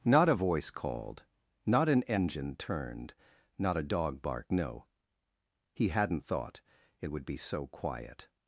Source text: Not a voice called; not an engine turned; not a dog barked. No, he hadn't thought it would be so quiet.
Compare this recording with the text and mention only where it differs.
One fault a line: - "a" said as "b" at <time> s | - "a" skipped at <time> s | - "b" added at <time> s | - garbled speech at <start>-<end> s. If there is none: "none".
none